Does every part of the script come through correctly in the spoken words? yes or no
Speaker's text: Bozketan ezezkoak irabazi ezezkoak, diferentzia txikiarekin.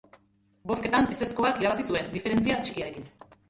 no